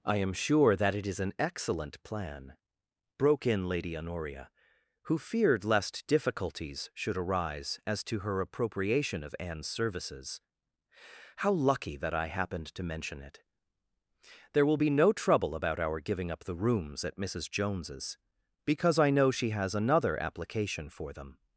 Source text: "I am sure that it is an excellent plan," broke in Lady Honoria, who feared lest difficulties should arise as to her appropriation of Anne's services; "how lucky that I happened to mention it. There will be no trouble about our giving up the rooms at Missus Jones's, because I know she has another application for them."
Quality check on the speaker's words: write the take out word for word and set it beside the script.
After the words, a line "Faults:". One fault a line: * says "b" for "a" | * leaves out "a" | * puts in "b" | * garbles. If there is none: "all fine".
"I am sure that it is an excellent plan," broke in Lady Honoria, who feared lest difficulties should arise as to her appropriation of Anne's services; "how lucky that I happened to mention it. There will be no trouble about our giving up the rooms at Missus Jones's, because I know she has another application for them."
Faults:
all fine